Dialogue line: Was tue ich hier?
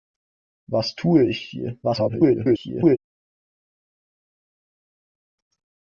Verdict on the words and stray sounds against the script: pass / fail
fail